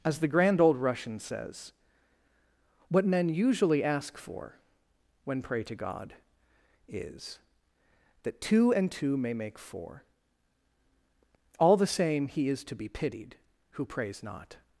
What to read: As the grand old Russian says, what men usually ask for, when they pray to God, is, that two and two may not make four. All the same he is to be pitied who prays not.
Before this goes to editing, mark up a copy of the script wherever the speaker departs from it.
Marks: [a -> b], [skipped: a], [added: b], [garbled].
As the grand old Russian says, what men usually ask for, when [skipped: they] pray to God, is, that two and two may [skipped: not] make four. All the same he is to be pitied who prays not.